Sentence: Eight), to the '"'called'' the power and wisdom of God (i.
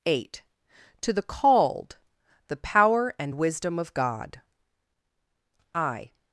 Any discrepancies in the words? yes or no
no